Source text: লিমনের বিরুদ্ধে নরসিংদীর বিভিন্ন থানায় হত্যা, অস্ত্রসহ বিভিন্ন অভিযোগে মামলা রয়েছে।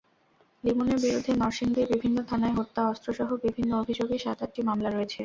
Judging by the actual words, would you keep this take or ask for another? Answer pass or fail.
fail